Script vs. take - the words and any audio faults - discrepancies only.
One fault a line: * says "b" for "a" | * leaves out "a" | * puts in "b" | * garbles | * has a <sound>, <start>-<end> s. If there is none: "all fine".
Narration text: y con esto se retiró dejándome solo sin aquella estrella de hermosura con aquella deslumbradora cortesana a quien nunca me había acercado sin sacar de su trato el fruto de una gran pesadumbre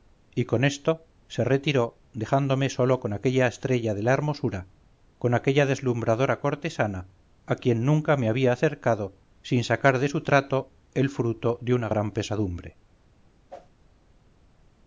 * says "con" for "sin"
* puts in "la"
* has a whoosh, 13.5-13.7 s